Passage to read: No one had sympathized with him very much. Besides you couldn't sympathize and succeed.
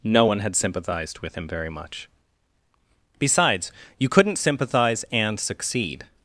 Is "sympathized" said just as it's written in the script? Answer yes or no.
yes